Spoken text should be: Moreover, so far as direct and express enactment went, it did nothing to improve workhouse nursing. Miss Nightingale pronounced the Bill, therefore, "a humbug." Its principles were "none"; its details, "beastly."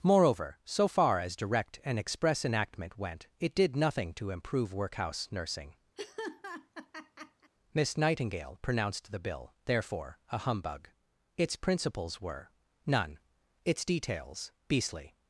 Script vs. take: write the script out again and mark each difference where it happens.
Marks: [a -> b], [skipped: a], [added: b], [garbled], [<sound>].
Moreover, so far as direct and express enactment went, it did nothing to improve workhouse nursing. [laugh] Miss Nightingale pronounced the Bill, therefore, "a humbug." Its principles were "none"; its details, "beastly."